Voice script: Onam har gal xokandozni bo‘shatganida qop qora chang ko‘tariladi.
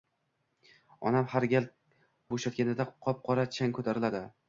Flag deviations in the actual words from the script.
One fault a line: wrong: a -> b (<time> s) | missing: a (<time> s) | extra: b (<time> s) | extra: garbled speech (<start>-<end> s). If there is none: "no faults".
missing: xokandozni (1.7 s)